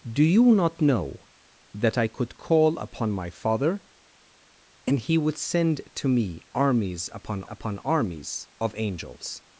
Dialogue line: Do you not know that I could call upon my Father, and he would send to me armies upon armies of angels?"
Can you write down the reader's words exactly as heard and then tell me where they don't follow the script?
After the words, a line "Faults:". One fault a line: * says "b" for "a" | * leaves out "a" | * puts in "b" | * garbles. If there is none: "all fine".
Do you not know that I could call upon my Father, and he would send to me armies upon upon armies of angels?"
Faults:
* puts in "upon"